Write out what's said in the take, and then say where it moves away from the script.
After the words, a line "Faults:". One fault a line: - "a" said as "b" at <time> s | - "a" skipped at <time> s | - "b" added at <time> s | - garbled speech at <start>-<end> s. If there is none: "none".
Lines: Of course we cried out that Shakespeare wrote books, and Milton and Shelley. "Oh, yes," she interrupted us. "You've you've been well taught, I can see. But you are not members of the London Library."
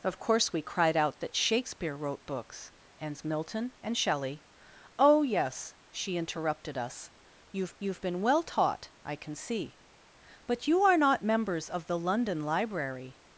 Of course we cried out that Shakespeare wrote books, and Milton and Shelley. "Oh, yes," she interrupted us. "You've you've been well taught, I can see. But you are not members of the London Library."
Faults:
none